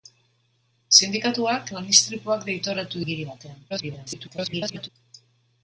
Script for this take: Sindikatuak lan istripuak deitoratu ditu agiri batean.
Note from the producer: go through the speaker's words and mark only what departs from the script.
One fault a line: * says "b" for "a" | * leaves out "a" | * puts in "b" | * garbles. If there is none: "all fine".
* leaves out "ditu"
* garbles